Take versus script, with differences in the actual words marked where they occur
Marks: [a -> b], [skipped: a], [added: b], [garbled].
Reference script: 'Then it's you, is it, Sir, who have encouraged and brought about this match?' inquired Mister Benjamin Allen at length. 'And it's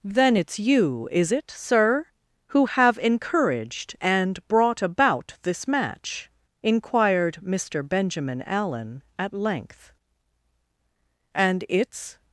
'Then it's you, is it, Sir, who have encouraged and brought about this match?' inquired Mister Benjamin Allen at length. 'And it's